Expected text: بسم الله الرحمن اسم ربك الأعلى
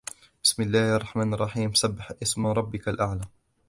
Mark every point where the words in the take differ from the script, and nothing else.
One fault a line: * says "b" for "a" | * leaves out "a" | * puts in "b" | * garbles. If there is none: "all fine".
* puts in "الرحيم سبح"